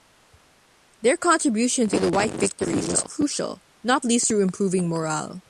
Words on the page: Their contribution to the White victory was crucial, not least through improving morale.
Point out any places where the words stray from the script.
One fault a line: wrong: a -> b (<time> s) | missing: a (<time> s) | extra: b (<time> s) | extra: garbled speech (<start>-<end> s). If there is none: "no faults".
no faults